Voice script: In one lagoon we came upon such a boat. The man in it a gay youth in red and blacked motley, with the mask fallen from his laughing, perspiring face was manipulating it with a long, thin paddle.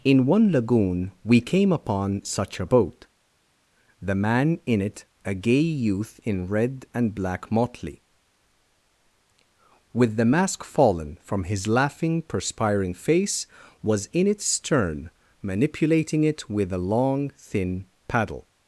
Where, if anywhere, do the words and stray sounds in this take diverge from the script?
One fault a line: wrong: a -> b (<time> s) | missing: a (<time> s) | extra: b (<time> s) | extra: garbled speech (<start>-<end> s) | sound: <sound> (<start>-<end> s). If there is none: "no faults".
wrong: blacked -> black (7.1 s)
extra: in its stern (14.1 s)